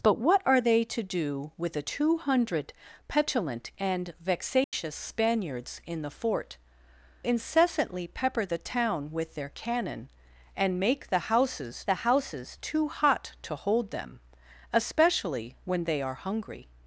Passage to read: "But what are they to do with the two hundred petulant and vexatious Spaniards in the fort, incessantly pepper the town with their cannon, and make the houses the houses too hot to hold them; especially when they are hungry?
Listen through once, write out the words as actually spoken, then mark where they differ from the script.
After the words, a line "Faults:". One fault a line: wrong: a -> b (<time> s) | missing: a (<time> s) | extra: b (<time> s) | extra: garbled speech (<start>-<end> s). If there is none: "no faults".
"But what are they to do with the two hundred petulant and vexatious Spaniards in the fort, incessantly pepper the town with their cannon, and make the houses the houses too hot to hold them; especially when they are hungry?
Faults:
no faults